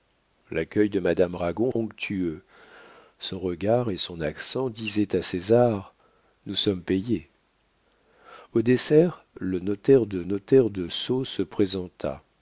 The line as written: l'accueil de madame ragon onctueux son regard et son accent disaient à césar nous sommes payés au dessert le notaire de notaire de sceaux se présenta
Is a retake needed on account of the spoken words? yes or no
no